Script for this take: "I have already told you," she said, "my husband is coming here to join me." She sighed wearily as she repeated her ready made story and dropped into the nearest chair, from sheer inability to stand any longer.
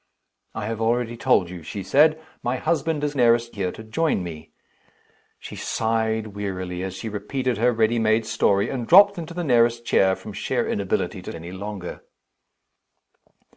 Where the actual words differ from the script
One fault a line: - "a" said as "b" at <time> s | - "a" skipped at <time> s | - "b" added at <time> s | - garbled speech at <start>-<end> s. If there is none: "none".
- "coming" said as "nearest" at 3.1 s
- "stand" skipped at 11.3 s